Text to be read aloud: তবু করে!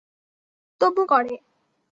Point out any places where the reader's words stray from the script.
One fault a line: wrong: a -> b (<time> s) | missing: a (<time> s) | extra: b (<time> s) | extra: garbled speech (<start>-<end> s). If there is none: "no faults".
no faults